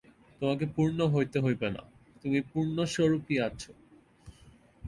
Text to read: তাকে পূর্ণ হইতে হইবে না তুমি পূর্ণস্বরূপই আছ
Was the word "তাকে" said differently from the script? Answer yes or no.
yes